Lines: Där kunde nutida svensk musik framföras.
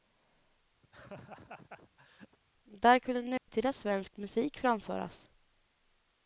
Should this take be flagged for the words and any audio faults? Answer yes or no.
yes